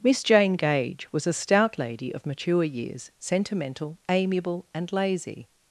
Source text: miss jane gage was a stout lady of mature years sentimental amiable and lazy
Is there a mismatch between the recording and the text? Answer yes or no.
no